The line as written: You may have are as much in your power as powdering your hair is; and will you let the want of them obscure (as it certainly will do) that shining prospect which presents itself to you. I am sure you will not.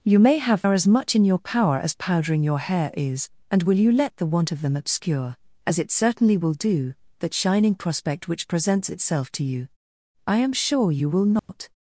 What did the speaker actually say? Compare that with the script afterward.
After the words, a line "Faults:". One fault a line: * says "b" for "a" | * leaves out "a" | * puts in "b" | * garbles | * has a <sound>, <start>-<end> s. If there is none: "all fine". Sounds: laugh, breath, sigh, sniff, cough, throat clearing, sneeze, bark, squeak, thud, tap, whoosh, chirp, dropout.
You may have are as much in your power as powdering your hair is; and will you let the want of them obscure (as it certainly will do) that shining prospect which presents itself to you. I am sure you will not.
Faults:
* has a dropout, 11.4-11.5 s